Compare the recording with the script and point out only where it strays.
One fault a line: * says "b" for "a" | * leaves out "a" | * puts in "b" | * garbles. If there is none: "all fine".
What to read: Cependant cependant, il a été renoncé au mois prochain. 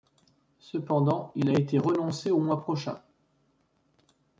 * leaves out "cependant"